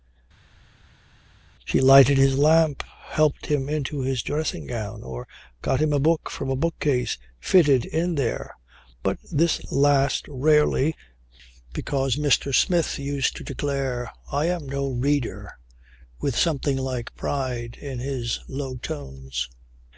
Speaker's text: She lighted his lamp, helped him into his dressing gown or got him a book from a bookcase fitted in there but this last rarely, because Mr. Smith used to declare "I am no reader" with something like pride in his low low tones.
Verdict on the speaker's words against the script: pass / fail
fail